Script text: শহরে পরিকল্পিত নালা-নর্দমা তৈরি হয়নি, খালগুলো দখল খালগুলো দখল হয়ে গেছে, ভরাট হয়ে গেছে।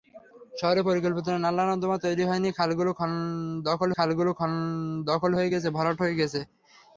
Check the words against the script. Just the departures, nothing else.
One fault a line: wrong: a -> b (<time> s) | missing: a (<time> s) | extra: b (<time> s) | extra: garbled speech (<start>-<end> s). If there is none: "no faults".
no faults